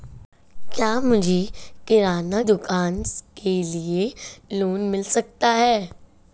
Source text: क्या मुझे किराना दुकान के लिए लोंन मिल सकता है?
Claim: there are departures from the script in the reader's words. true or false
false